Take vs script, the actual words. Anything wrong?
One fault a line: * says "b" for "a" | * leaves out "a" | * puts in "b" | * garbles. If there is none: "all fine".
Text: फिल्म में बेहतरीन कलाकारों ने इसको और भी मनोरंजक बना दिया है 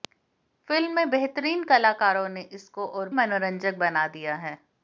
* leaves out "भी"